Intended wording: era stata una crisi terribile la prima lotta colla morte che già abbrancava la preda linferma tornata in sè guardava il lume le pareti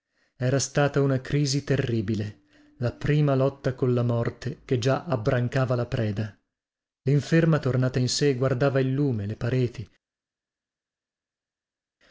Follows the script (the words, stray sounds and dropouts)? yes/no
yes